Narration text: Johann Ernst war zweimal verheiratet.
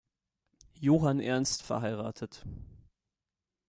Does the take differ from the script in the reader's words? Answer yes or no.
yes